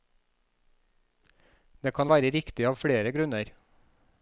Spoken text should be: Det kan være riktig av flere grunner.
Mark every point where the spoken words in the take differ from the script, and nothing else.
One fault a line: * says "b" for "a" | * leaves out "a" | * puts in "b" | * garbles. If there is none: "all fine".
all fine